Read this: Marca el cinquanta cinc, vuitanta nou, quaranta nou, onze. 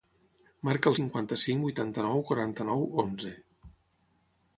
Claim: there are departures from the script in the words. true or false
false